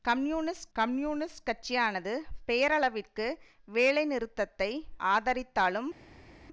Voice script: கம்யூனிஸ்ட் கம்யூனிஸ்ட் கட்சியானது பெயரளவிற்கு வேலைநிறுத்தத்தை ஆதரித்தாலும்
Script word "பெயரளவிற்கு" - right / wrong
right